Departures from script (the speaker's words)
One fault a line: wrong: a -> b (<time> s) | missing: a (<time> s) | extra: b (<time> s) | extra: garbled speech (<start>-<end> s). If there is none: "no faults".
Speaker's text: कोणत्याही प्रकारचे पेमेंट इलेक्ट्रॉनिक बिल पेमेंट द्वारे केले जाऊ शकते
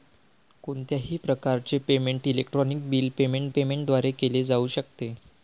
extra: पेमेंट (3.5 s)